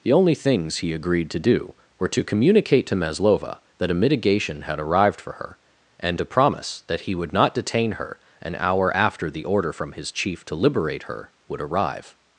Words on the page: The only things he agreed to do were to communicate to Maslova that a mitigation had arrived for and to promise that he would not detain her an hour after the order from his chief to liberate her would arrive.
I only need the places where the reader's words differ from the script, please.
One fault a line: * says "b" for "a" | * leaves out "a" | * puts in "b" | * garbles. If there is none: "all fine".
* puts in "her"